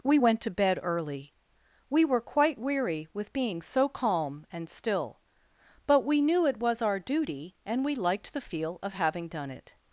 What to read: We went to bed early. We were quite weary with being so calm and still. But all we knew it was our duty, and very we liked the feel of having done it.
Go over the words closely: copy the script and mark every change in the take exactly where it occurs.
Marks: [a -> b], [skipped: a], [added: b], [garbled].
We went to bed early. We were quite weary with being so calm and still. But [skipped: all] we knew it was our duty, and [skipped: very] we liked the feel of having done it.